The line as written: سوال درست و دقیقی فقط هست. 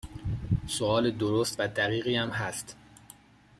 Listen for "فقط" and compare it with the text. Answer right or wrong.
wrong